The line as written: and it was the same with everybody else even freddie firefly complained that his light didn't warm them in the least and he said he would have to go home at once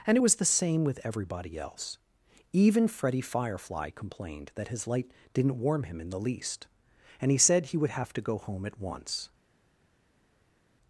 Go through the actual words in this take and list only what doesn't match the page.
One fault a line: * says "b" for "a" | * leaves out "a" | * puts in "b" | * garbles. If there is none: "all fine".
* says "him" for "them"